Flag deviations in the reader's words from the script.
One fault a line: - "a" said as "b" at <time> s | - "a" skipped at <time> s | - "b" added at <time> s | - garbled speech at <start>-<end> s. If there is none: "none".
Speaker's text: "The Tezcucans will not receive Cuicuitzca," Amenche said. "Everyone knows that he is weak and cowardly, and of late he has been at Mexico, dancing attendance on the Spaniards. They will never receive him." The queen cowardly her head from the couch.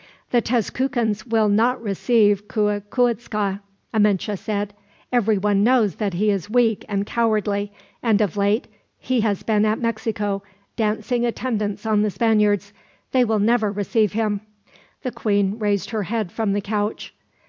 - "cowardly" said as "raised" at 15.6 s